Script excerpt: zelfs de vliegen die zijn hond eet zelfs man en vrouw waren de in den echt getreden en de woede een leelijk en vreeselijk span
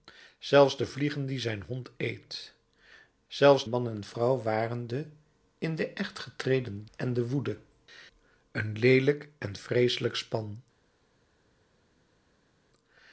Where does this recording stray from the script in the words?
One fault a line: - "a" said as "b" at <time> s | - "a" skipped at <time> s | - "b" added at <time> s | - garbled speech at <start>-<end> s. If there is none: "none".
none